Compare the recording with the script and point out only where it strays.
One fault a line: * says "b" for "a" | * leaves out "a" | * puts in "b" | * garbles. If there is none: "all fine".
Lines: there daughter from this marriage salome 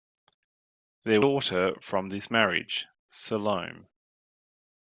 all fine